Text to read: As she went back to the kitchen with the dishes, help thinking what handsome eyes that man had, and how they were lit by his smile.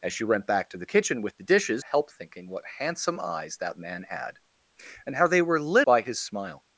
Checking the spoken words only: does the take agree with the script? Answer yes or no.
yes